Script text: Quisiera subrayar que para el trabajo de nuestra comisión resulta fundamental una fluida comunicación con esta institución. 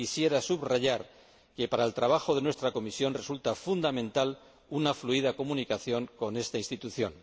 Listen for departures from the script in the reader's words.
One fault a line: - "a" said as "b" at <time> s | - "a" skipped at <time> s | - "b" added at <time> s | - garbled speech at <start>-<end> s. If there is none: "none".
none